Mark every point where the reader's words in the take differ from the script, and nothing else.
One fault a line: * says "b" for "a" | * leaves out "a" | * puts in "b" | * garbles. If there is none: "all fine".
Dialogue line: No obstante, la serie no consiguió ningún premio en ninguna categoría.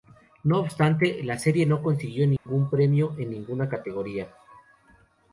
all fine